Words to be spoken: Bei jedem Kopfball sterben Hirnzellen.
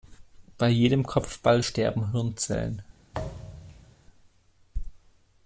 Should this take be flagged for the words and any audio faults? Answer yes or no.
yes